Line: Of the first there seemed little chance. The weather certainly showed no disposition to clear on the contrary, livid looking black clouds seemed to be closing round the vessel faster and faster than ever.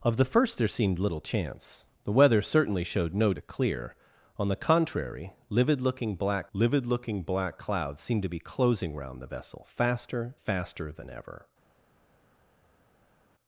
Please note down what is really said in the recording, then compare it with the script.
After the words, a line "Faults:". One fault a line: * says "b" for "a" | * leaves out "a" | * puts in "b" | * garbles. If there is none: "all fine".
Of the first there seemed little chance. The weather certainly showed no to clear on the contrary, livid looking black livid looking black clouds seemed to be closing round the vessel faster faster than ever.
Faults:
* leaves out "disposition"
* puts in "livid looking black"
* leaves out "and"